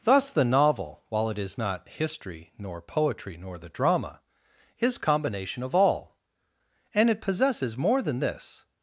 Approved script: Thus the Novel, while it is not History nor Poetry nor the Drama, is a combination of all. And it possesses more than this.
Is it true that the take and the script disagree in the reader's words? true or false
true